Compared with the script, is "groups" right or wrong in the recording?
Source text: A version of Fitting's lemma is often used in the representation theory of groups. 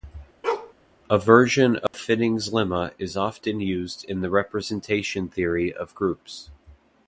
right